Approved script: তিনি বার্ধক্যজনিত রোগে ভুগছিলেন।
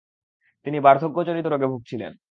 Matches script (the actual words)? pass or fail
pass